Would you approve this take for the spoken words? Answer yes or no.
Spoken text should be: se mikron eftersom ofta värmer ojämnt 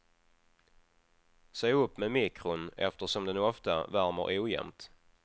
no